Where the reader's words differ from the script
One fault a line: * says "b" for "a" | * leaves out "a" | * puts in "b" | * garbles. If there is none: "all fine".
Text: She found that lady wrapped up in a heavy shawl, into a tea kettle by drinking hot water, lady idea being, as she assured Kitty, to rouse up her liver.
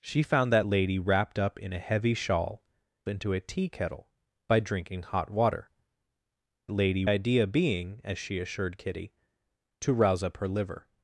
all fine